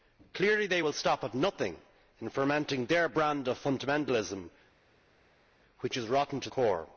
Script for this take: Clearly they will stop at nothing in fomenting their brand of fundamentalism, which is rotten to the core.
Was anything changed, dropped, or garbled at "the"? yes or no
yes